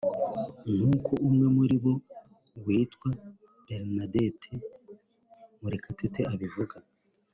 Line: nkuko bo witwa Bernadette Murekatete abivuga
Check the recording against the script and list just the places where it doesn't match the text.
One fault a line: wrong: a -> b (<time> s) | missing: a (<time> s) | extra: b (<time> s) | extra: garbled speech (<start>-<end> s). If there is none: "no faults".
extra: umwe muri (1.3 s)